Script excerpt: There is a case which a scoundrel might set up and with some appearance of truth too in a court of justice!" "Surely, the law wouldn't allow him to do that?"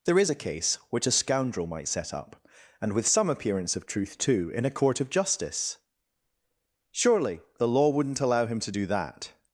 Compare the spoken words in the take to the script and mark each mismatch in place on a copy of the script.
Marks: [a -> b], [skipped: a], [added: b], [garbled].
There is a case which a scoundrel might set up and with some appearance of truth too in a court of justice!" "Surely, the law wouldn't allow him to do that?"